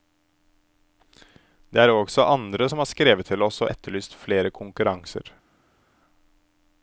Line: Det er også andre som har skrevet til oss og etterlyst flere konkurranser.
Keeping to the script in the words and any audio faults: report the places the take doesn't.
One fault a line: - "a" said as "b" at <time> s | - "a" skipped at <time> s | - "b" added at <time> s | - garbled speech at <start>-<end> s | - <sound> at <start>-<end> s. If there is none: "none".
none